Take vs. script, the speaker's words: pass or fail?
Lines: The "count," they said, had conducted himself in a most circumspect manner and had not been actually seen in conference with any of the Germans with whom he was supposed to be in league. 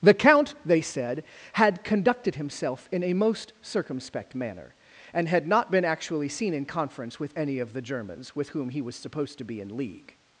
pass